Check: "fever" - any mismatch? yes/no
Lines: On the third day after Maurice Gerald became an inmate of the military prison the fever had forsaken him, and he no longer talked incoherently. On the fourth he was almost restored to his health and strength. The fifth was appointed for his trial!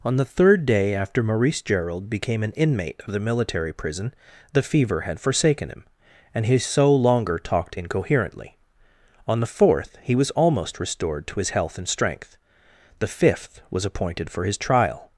no